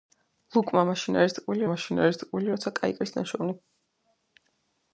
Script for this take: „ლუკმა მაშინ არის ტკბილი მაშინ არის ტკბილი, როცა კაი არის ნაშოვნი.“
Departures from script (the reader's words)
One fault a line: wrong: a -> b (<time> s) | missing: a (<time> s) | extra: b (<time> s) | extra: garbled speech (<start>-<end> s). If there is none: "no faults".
no faults